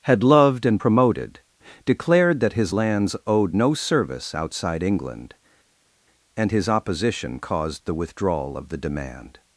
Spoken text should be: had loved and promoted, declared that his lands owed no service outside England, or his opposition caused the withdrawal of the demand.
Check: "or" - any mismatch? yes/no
yes